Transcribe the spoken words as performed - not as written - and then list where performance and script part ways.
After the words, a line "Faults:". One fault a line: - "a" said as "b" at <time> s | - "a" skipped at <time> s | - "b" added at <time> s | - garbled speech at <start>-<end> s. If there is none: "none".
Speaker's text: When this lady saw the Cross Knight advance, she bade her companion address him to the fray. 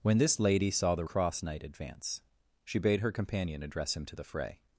When this lady saw the Cross Knight advance, she bade her companion address him to the fray.
Faults:
none